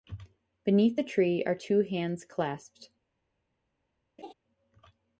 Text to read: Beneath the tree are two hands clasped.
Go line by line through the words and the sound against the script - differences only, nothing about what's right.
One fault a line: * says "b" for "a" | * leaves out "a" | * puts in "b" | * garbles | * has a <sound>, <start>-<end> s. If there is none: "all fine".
* has a laugh, 4.2-4.3 s